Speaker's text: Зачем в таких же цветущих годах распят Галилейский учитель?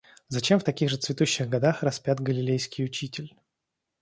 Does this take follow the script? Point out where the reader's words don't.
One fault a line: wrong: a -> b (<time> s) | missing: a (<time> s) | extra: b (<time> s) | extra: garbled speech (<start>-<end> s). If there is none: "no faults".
no faults